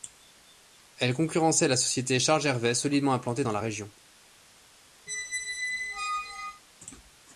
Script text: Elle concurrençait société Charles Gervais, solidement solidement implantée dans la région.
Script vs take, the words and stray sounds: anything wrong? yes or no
yes